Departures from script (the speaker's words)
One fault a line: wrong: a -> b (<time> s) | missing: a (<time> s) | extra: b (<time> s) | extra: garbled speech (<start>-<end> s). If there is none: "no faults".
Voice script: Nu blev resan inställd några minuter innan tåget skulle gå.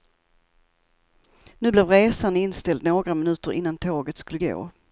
no faults